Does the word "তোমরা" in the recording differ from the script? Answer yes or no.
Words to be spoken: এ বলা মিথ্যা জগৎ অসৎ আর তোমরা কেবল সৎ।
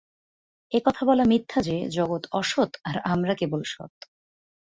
yes